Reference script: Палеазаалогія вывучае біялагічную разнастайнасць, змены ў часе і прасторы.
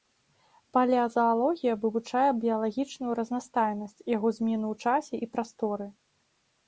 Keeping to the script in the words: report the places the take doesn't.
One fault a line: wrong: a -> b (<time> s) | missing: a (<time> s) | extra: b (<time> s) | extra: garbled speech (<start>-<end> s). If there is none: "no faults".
extra: яго (4.2 s)